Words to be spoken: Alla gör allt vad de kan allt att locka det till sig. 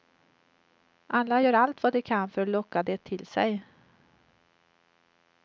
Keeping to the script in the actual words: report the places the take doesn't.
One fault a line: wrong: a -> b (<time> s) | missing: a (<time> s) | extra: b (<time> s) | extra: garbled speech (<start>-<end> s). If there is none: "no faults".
wrong: allt -> för (2.3 s)